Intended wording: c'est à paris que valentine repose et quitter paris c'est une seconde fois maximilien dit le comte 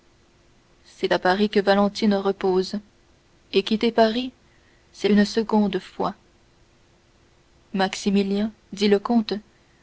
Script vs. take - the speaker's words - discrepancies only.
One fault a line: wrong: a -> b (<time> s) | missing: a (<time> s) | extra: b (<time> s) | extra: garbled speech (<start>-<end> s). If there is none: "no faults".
no faults